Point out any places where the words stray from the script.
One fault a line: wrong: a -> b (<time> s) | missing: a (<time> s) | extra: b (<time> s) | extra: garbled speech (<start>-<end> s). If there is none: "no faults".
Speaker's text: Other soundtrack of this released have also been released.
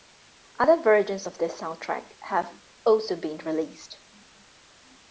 wrong: soundtrack -> versions (0.8 s)
wrong: released -> soundtrack (1.6 s)